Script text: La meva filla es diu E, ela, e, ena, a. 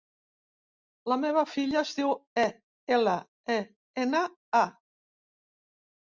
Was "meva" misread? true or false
false